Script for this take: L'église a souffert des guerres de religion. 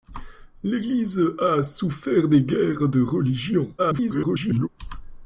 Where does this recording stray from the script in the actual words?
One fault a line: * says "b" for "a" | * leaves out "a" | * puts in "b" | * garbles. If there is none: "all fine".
* garbles